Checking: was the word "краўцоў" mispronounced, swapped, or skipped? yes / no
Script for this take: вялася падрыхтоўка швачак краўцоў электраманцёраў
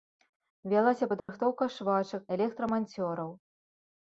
yes